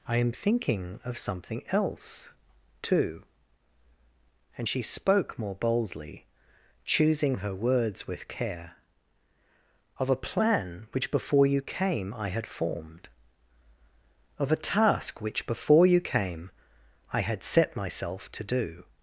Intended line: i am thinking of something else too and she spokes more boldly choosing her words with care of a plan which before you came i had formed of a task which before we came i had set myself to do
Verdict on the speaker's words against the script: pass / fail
fail